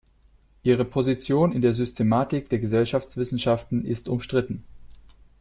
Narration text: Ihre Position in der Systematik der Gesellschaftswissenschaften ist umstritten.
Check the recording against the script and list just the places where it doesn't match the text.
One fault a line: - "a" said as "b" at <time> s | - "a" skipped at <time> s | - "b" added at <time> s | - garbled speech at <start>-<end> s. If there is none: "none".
none